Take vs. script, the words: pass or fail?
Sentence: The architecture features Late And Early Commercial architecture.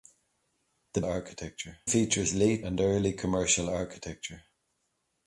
pass